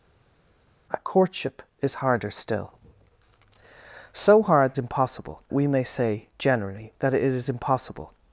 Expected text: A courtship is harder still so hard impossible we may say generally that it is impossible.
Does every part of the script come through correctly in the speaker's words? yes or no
yes